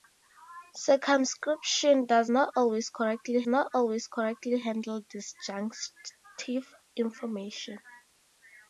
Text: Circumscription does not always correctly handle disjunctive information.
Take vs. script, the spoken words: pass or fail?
fail